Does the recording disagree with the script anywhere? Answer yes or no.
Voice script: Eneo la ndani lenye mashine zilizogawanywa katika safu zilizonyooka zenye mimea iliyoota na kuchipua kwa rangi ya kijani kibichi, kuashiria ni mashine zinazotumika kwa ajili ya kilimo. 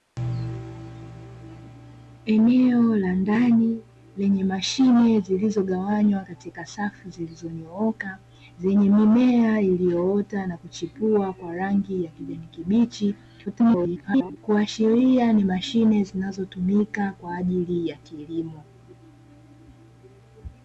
yes